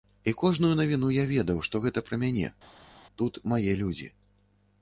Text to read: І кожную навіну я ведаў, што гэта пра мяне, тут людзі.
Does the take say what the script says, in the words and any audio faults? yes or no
no